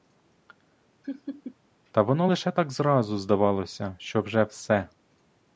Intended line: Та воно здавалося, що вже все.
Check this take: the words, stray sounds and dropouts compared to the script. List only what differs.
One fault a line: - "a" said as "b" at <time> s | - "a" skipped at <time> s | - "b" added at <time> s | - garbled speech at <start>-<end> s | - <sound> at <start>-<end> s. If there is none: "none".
- laugh at 1.0-1.6 s
- "лише так зразу" added at 2.2 s